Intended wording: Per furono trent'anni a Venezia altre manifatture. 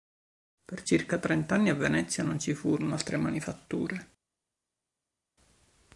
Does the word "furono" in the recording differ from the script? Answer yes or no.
yes